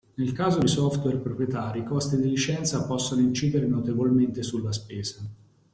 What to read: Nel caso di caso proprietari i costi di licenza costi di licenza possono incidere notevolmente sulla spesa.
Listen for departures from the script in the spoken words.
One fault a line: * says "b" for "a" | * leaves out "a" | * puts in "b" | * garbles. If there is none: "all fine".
* says "software" for "caso"
* leaves out "costi di licenza"